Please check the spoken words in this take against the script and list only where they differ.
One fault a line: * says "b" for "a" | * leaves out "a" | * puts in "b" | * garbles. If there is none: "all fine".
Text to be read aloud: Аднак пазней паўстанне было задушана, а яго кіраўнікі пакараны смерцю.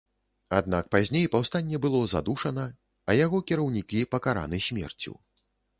all fine